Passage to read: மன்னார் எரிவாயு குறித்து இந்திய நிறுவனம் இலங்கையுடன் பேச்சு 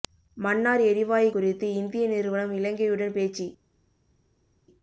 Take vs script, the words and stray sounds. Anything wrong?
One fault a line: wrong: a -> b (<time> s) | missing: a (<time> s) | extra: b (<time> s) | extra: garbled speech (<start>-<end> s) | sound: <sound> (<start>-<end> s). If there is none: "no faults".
no faults